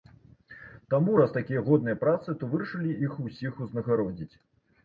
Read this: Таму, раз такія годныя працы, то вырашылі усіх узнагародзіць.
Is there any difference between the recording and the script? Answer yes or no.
yes